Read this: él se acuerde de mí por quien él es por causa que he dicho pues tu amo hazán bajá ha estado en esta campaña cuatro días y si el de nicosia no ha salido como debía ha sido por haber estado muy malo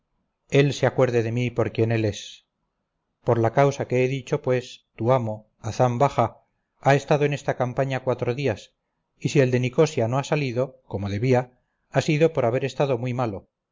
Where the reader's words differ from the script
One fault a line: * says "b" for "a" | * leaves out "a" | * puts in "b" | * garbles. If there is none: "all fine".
* puts in "la"